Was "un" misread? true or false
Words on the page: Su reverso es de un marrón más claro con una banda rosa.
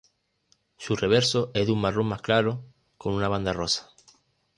false